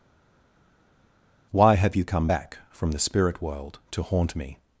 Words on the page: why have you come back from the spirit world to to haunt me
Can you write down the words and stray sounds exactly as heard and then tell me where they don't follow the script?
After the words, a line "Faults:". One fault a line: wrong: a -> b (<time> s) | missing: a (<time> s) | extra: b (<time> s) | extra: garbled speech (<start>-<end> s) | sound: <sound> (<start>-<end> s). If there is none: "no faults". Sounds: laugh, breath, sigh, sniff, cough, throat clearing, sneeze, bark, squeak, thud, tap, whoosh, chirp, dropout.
why have you come back from the spirit world to haunt me
Faults:
missing: to (4.0 s)